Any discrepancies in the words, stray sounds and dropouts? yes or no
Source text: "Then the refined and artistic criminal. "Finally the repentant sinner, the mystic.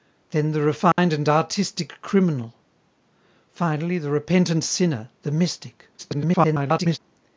yes